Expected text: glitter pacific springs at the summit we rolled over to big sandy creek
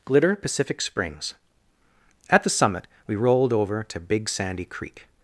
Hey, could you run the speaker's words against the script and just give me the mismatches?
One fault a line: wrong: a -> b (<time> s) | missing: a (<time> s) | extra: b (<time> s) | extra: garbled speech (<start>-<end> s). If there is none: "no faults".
no faults